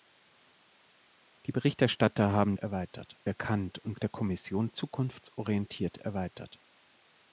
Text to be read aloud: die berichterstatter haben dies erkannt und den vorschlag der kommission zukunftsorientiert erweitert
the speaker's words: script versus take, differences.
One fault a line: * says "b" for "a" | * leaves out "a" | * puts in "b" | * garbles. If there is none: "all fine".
* says "erweitert" for "dies"
* leaves out "den vorschlag"